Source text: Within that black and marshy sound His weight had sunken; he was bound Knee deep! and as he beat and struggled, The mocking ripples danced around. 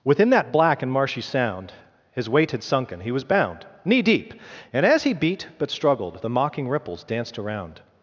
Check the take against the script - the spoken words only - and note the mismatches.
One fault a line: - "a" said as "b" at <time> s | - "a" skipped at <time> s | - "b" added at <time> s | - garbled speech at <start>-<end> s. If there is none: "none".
- "and" said as "but" at 5.6 s